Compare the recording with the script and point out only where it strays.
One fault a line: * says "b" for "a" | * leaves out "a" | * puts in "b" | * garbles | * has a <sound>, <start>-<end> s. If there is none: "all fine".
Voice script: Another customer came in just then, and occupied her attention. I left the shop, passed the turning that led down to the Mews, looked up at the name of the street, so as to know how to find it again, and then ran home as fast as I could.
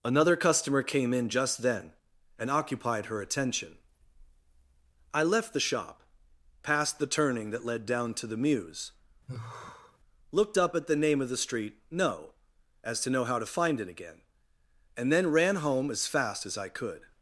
* has a sigh, 9.3-10.0 s
* says "no" for "so"